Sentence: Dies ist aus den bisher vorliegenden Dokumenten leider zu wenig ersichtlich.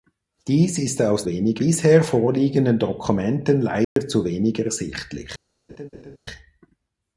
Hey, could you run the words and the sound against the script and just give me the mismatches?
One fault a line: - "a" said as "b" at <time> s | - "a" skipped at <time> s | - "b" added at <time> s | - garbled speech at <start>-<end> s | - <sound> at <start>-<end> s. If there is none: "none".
- "den" said as "wenig" at 1.3 s
- dropout at 3.8-4.0 s
- laugh at 5.7-6.2 s